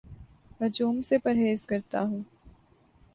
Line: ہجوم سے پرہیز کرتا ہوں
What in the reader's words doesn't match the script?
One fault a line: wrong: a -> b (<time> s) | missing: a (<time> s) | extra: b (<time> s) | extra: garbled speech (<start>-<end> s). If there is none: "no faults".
no faults